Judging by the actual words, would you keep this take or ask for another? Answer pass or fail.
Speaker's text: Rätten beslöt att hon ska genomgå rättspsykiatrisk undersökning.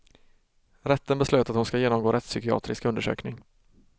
pass